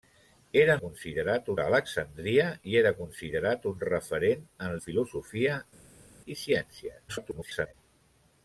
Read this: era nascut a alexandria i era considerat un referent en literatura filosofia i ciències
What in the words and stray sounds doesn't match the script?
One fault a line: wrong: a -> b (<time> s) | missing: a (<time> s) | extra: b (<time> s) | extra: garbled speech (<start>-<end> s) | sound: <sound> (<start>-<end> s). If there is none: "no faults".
wrong: nascut -> considerat (0.8 s)
missing: literatura (4.8 s)
extra: garbled speech (7.1-7.7 s)